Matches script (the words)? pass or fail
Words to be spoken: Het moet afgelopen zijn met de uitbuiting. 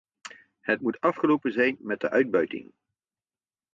pass